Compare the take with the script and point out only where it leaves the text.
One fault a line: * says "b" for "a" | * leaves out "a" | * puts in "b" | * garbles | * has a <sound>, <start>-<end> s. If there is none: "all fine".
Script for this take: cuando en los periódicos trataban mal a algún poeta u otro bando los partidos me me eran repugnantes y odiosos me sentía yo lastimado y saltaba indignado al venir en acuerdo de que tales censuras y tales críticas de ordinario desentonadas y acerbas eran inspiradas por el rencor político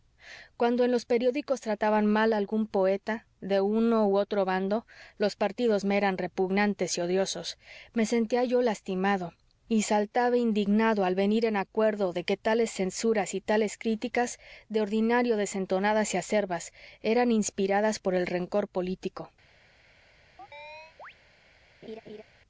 * puts in "de uno"
* leaves out "me"
* has a chirp, 20.4-21.1 s
* has a laugh, 21.8-22.2 s